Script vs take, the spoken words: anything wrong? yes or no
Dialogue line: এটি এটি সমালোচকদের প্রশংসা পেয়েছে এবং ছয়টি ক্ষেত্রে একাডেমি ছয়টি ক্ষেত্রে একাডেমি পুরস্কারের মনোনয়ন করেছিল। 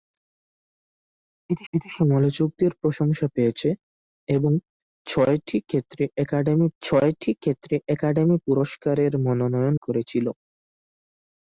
no